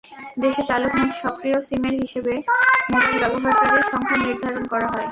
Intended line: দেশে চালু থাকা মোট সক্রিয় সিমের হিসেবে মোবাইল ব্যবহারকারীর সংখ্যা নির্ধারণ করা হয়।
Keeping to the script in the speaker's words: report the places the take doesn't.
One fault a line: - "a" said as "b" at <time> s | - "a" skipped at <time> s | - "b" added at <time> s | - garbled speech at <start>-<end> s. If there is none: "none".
- "থাকা" skipped at 0.9 s